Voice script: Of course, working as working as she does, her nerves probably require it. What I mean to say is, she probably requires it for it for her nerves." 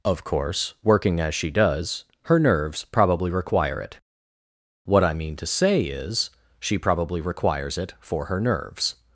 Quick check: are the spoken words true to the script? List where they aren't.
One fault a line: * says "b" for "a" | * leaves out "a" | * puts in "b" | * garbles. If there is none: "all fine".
* leaves out "working as"
* leaves out "it for"